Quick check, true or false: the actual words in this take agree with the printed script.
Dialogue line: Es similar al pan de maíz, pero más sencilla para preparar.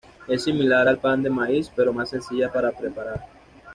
true